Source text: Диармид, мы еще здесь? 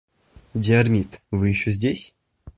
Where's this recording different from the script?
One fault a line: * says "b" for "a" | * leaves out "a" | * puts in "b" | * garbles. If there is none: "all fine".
* says "вы" for "мы"